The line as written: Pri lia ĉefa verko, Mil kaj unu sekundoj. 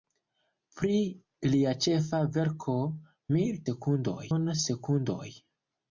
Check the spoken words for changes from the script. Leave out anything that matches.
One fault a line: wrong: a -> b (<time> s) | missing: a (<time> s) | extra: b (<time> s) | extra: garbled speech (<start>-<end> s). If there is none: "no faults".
wrong: kaj -> sekundoj (3.7 s)